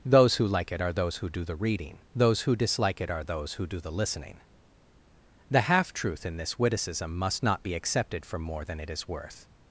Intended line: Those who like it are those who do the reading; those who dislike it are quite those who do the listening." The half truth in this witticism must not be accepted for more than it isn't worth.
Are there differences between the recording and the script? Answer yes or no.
yes